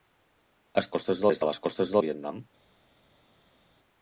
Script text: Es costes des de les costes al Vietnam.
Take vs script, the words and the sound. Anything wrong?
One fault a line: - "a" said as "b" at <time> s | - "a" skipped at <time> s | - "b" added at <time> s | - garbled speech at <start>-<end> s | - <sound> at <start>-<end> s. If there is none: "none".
none